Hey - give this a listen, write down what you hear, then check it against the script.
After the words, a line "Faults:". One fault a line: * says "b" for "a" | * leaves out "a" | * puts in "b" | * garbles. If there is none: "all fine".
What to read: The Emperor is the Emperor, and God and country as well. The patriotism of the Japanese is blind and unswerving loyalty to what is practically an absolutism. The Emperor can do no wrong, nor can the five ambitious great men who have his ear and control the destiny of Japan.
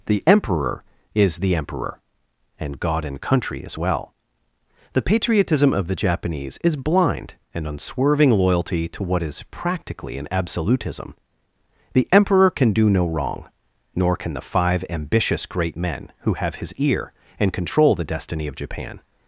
The Emperor is the Emperor, and God and country as well. The patriotism of the Japanese is blind and unswerving loyalty to what is practically an absolutism. The Emperor can do no wrong, nor can the five ambitious great men who have his ear and control the destiny of Japan.
Faults:
all fine